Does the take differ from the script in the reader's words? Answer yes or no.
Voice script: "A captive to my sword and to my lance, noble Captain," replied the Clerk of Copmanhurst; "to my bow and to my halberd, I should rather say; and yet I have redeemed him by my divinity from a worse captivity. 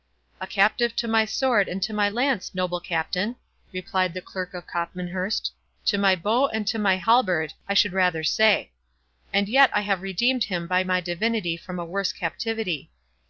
no